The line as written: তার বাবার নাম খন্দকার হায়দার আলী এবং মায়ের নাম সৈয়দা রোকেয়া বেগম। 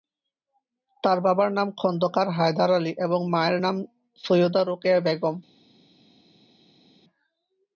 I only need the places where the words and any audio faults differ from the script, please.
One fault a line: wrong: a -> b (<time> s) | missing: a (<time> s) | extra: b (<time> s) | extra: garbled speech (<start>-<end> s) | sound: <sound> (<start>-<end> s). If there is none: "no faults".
no faults